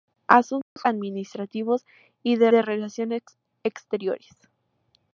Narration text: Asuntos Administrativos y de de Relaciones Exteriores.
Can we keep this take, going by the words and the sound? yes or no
no